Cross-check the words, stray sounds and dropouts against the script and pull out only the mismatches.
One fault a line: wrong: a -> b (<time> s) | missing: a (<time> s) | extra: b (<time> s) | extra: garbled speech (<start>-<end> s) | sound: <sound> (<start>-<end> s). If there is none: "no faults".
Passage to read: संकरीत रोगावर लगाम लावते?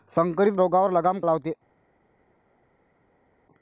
no faults